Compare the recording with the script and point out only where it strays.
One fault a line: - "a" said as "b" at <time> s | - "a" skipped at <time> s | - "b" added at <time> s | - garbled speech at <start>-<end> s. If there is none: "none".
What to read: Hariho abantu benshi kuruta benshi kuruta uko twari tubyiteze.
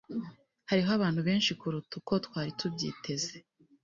- "benshi kuruta" skipped at 1.9 s